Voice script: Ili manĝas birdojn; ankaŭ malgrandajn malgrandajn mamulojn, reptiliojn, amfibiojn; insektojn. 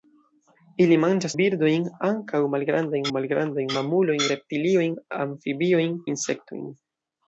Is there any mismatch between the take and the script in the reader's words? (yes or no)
no